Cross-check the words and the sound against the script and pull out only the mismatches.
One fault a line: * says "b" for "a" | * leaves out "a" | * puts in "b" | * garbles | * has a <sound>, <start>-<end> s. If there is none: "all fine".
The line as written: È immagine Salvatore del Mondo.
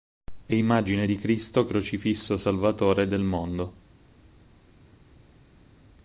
* puts in "di Cristo crocifisso"